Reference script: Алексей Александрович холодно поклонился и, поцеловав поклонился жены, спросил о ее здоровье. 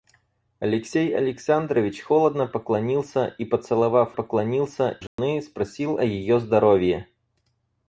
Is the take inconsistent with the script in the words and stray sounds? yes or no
yes